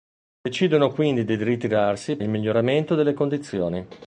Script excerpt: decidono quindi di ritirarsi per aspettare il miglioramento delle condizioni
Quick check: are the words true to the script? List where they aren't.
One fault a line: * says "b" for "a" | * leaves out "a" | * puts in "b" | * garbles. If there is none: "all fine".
* leaves out "per aspettare"